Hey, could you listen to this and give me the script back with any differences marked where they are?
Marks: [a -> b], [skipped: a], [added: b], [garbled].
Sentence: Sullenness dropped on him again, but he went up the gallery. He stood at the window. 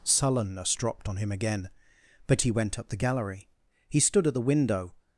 Sullenness dropped on him again, but he went up the gallery. He stood at the window.